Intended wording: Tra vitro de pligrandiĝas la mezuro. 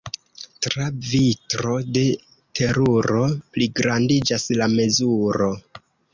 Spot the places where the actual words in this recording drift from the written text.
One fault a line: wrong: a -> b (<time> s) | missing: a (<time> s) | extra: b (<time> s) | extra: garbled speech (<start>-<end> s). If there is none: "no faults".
extra: teruro (2.6 s)